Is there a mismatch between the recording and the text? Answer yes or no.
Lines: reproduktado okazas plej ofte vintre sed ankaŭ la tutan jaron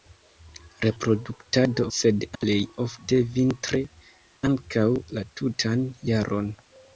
yes